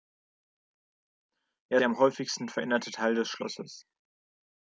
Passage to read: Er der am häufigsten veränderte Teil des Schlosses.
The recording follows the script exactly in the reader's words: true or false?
true